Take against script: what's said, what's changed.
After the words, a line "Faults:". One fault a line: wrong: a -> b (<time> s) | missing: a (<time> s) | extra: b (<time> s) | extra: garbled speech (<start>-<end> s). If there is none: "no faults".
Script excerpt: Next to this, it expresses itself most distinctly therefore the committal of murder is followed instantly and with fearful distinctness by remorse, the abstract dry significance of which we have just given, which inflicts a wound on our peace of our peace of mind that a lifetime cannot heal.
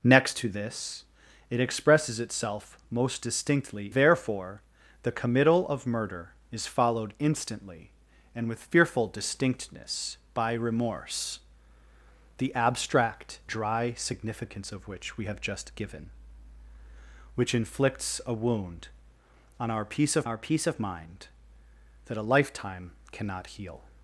Next to this, it expresses itself most distinctly therefore the committal of murder is followed instantly and with fearful distinctness by remorse, the abstract dry significance of which we have just given, which inflicts a wound on our peace of our peace of mind that a lifetime cannot heal.
Faults:
no faults